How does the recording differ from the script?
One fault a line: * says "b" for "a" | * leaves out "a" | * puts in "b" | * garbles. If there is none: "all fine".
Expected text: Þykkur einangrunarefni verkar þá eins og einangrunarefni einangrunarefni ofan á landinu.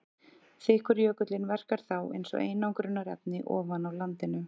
* says "jökullinn" for "einangrunarefni"
* leaves out "einangrunarefni"